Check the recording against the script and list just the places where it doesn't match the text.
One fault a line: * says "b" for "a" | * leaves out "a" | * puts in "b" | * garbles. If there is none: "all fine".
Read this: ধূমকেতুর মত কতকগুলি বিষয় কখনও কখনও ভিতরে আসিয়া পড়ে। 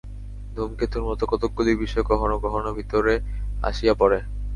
all fine